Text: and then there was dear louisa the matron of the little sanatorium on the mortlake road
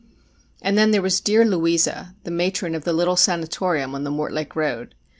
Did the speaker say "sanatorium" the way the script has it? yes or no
yes